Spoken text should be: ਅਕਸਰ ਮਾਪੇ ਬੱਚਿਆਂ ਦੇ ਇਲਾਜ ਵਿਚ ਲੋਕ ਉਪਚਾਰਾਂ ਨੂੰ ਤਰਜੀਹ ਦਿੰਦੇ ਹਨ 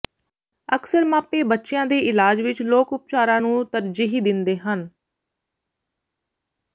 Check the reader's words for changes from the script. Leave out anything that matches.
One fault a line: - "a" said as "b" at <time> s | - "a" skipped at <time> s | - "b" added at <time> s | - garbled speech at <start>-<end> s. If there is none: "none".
none